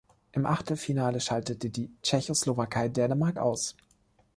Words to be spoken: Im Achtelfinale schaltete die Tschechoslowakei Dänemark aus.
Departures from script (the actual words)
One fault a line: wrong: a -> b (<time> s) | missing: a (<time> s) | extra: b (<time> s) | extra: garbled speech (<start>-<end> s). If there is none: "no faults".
no faults